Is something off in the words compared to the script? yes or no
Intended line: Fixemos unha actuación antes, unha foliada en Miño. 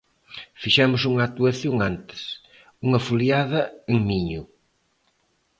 no